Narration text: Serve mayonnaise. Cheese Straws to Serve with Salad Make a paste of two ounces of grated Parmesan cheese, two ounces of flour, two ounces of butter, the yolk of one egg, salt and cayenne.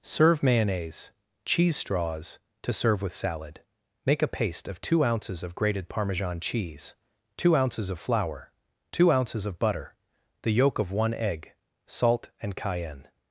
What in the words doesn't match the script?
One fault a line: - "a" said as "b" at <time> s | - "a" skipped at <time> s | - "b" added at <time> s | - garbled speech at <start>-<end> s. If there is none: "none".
none